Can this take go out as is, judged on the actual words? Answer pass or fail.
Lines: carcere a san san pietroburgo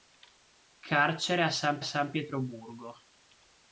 pass